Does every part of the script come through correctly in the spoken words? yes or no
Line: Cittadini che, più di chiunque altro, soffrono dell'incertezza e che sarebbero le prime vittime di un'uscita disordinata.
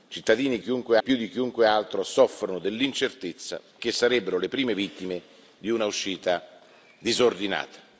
no